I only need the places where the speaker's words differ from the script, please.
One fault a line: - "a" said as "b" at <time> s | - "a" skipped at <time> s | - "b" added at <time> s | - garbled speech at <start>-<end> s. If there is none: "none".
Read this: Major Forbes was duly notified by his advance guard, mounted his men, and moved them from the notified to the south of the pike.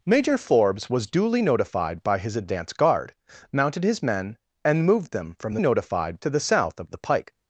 none